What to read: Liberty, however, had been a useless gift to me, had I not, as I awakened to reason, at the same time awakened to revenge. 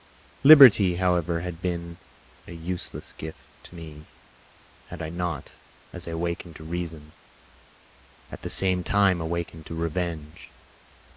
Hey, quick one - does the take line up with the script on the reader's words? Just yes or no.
yes